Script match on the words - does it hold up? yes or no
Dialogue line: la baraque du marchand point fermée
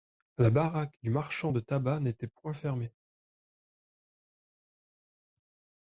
no